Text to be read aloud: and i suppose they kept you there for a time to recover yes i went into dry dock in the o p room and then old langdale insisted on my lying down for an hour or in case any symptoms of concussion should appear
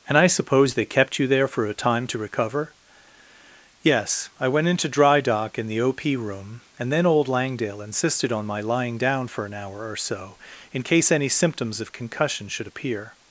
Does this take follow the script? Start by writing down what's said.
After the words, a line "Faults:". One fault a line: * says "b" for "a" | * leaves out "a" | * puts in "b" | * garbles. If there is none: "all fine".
and i suppose they kept you there for a time to recover yes i went into dry dock in the o p room and then old langdale insisted on my lying down for an hour or so in case any symptoms of concussion should appear
Faults:
* puts in "so"